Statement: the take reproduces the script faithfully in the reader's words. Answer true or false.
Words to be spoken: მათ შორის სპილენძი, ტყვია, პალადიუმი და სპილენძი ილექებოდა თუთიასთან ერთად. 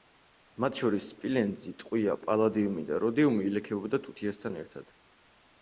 false